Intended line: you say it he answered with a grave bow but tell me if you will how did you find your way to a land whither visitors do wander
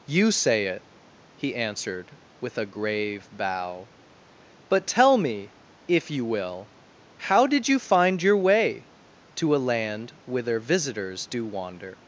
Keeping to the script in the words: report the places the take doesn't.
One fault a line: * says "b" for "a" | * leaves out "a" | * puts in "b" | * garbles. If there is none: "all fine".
all fine